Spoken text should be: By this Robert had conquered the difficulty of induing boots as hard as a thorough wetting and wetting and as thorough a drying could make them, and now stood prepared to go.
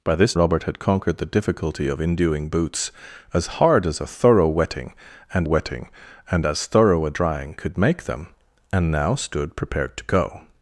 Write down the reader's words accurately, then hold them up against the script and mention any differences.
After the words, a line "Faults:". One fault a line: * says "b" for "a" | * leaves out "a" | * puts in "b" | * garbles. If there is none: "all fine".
By this Robert had conquered the difficulty of induing boots as hard as a thorough wetting and wetting and as thorough a drying could make them, and now stood prepared to go.
Faults:
all fine